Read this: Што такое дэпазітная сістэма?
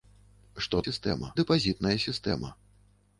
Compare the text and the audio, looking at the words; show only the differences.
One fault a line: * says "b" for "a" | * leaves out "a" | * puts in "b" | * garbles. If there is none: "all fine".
* says "сістэма" for "такое"